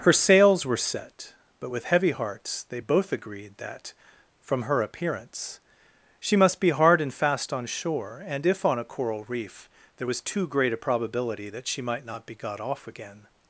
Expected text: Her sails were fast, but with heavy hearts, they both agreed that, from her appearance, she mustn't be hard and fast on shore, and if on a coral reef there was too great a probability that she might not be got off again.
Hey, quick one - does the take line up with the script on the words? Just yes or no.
no